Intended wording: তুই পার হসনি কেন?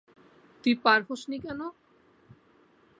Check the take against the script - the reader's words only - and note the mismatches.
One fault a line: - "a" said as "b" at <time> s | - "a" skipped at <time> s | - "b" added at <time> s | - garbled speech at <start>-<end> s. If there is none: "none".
none